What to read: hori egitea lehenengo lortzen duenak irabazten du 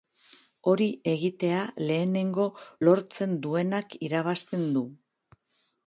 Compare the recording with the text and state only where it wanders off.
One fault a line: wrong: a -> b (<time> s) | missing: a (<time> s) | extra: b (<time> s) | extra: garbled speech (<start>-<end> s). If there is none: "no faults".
no faults